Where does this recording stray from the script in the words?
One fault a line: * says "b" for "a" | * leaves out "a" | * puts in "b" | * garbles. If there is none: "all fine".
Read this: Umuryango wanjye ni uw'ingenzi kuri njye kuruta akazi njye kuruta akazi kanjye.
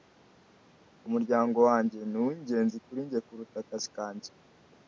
* leaves out "njye kuruta akazi"